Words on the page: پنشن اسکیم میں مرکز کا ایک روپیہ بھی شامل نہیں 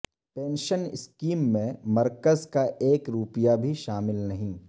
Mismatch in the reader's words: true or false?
false